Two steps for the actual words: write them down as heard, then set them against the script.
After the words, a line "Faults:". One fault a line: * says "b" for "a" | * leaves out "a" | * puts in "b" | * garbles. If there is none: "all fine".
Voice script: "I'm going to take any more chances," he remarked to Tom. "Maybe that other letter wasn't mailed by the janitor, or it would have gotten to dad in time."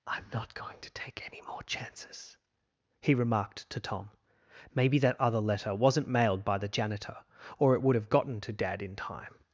"I'm not going to take any more chances," he remarked to Tom. "Maybe that other letter wasn't mailed by the janitor, or it would have gotten to dad in time."
Faults:
* puts in "not"